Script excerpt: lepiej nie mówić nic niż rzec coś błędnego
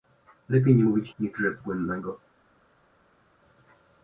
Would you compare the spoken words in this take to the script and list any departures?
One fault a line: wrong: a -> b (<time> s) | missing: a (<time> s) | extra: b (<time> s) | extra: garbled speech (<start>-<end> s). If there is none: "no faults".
missing: nic (1.1 s)
missing: coś (1.6 s)